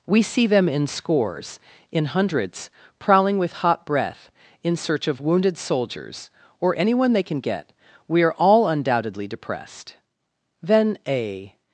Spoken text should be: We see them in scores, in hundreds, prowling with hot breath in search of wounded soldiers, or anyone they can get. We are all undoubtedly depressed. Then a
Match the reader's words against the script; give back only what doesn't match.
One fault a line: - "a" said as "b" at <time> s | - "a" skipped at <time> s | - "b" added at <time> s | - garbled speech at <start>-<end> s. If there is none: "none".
none